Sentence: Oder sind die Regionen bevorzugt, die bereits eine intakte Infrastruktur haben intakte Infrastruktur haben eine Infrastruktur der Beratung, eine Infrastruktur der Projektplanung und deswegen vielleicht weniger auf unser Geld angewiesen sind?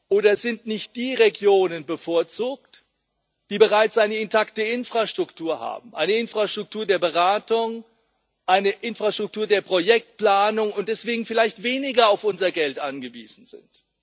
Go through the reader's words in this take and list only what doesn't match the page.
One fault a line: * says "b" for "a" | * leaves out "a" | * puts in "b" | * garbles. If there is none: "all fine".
* puts in "nicht"
* leaves out "intakte Infrastruktur haben"